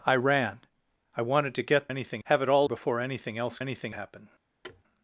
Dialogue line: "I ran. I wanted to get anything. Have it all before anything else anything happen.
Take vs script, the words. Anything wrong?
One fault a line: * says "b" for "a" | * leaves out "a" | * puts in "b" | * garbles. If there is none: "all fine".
all fine